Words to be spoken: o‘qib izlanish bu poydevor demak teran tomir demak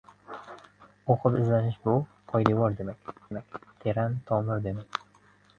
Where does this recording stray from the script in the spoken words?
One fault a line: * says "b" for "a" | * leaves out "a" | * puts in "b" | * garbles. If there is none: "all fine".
* puts in "demak"